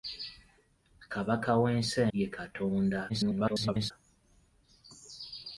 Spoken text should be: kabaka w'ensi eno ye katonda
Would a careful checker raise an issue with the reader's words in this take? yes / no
yes